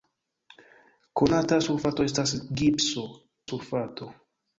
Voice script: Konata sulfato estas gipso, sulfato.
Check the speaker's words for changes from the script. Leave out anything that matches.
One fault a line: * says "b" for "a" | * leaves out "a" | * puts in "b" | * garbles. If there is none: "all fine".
all fine